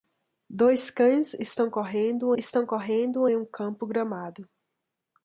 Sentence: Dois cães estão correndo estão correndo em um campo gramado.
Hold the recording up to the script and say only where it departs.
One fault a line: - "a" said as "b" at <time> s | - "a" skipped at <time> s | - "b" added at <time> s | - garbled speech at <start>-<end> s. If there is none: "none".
none